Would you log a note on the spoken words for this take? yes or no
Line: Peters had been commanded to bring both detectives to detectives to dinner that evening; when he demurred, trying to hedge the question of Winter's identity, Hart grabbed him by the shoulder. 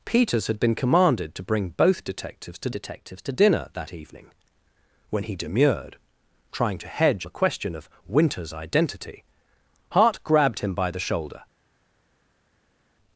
no